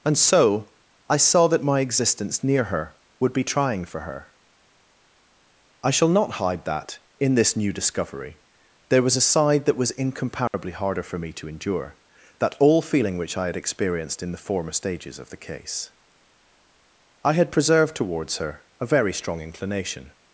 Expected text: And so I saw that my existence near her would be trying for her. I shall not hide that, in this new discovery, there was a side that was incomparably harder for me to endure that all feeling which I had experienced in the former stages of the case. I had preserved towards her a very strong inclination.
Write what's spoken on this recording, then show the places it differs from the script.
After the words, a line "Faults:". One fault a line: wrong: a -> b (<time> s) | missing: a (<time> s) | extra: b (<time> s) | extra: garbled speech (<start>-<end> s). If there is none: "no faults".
And so I saw that my existence near her would be trying for her. I shall not hide that, in this new discovery, there was a side that was incomparably harder for me to endure that all feeling which I had experienced in the former stages of the case. I had preserved towards her a very strong inclination.
Faults:
no faults